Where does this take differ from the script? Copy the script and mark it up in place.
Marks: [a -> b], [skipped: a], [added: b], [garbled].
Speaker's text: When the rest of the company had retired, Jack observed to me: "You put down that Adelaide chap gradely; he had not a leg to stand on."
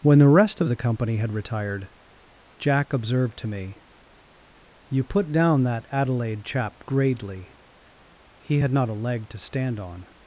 When the rest of the company had retired, Jack observed to me: "You put down that Adelaide chap gradely; he had not a leg to stand on."